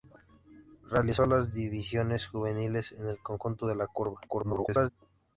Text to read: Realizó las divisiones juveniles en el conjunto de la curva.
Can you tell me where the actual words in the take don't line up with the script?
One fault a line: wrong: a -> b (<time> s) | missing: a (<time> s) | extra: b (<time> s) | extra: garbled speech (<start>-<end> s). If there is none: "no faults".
extra: garbled speech (4.3-4.9 s)